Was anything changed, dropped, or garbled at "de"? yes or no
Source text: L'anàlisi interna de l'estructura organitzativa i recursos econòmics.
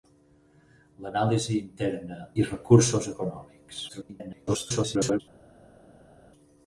yes